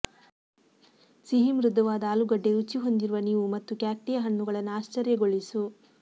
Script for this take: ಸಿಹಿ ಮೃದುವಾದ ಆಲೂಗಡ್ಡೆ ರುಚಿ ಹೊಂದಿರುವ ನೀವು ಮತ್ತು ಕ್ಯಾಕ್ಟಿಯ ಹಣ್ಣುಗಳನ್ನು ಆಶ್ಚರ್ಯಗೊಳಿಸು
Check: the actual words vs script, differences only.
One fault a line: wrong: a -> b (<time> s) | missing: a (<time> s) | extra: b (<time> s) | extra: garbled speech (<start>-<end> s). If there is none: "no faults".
no faults